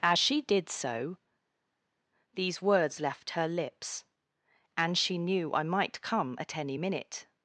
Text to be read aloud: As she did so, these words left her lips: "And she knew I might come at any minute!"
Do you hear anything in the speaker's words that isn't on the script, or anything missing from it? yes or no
no